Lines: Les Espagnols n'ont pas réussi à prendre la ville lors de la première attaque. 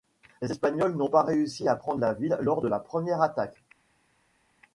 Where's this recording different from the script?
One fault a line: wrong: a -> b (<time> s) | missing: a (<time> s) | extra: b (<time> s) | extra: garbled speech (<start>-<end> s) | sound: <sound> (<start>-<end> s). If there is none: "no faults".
no faults